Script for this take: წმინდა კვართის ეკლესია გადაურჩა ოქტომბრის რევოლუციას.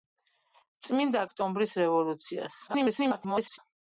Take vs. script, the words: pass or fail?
fail